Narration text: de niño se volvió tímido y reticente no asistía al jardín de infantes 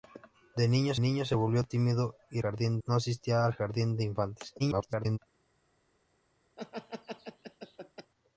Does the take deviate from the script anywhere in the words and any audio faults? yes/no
yes